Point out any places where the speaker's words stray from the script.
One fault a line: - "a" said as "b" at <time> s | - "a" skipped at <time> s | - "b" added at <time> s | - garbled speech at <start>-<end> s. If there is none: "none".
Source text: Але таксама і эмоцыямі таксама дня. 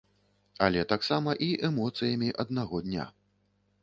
- "таксама" said as "аднаго" at 2.5 s